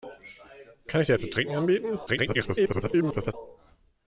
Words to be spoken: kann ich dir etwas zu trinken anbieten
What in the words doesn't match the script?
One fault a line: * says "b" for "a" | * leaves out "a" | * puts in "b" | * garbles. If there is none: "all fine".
* leaves out "etwas"
* garbles